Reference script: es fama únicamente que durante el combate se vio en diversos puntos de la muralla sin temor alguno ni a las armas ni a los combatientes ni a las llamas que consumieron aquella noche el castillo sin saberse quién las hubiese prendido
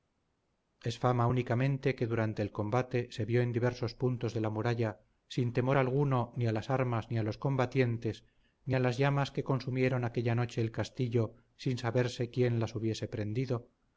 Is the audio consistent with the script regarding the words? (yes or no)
yes